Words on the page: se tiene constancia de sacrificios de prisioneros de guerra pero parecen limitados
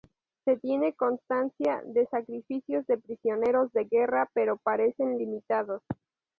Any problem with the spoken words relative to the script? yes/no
no